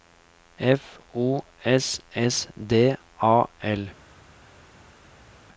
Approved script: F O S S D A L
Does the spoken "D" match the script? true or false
true